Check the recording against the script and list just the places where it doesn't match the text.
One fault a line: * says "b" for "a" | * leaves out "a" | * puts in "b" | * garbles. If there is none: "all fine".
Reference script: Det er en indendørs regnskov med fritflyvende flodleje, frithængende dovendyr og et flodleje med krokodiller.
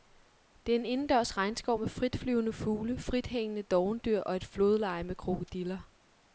* says "fugle" for "flodleje"